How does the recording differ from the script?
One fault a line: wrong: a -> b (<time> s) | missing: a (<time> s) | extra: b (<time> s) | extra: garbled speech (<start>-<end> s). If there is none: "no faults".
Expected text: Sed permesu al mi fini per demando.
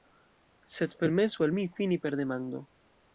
no faults